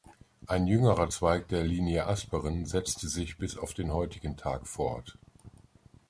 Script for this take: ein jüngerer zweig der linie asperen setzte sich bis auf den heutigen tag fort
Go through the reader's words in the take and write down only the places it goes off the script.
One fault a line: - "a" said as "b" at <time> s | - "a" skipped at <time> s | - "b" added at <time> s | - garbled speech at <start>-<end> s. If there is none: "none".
none